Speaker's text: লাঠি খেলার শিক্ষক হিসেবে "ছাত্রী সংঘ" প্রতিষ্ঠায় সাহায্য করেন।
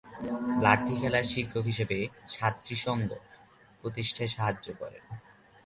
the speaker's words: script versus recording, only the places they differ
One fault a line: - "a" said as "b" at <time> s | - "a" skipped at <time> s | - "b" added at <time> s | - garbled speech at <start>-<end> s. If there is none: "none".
none